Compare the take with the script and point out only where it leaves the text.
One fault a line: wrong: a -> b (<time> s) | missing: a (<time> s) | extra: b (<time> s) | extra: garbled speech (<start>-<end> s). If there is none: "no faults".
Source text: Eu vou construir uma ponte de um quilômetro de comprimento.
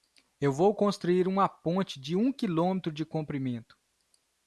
no faults